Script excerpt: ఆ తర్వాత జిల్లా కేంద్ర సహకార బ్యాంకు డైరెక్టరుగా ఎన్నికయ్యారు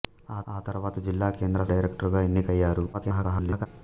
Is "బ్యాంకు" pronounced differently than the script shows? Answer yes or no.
yes